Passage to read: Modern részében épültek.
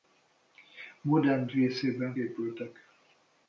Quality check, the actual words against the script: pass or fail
pass